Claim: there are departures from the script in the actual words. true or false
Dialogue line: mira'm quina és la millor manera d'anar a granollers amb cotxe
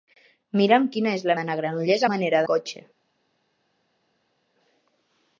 true